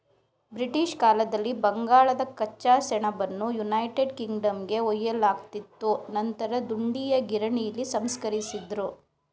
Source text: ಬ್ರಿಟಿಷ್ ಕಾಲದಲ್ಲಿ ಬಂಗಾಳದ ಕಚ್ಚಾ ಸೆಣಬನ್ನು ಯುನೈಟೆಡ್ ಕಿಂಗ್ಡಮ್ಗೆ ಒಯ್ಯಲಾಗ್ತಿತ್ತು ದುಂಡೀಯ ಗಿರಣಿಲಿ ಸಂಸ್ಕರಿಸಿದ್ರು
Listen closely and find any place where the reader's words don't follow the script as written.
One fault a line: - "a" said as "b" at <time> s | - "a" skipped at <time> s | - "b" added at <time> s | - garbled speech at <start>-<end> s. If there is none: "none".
- "ನಂತರ" added at 6.1 s